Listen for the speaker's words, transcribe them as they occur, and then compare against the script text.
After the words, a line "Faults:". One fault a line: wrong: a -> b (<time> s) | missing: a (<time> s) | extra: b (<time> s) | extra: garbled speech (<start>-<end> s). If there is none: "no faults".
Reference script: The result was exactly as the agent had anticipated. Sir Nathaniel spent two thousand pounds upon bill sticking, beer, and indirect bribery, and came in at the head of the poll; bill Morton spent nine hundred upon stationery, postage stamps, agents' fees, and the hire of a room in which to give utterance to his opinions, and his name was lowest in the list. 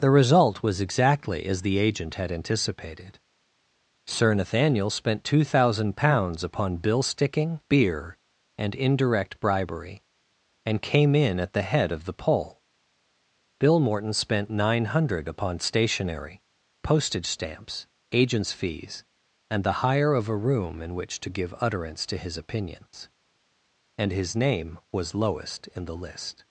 The result was exactly as the agent had anticipated. Sir Nathaniel spent two thousand pounds upon bill sticking, beer, and indirect bribery, and came in at the head of the poll; bill Morton spent nine hundred upon stationery, postage stamps, agents' fees, and the hire of a room in which to give utterance to his opinions, and his name was lowest in the list.
Faults:
no faults